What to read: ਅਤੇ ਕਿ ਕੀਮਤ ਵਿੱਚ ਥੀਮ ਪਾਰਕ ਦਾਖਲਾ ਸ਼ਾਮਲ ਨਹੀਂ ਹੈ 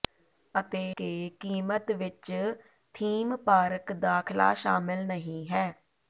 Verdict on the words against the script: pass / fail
pass